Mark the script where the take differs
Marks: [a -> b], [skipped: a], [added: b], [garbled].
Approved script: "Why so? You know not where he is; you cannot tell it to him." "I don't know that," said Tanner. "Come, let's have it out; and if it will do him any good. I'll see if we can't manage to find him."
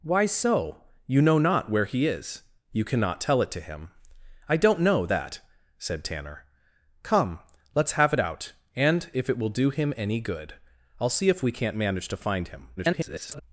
"Why so? You know not where he is; you cannot tell it to him." "I don't know that," said Tanner. "Come, let's have it out; and if it will do him any good. I'll see if we can't manage to find him." [garbled]